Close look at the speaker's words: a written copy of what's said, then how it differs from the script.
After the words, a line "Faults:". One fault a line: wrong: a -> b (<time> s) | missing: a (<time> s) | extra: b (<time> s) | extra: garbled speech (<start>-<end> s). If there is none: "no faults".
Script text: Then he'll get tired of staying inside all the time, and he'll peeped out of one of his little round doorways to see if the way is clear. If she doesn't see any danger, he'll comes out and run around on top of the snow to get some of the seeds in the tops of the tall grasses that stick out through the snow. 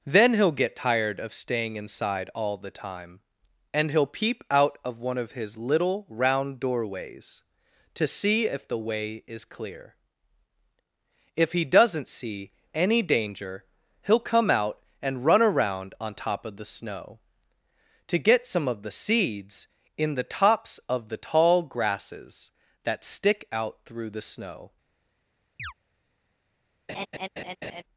Then he'll get tired of staying inside all the time, and he'll peep out of one of his little round doorways to see if the way is clear. If he doesn't see any danger, he'll come out and run around on top of the snow to get some of the seeds in the tops of the tall grasses that stick out through the snow.
Faults:
wrong: peeped -> peep (4.1 s)
wrong: she -> he (11.5 s)
wrong: comes -> come (14.2 s)